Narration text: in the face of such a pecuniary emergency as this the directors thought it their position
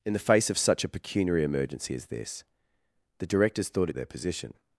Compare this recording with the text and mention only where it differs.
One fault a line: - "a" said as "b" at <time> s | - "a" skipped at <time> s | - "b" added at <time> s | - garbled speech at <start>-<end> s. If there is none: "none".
none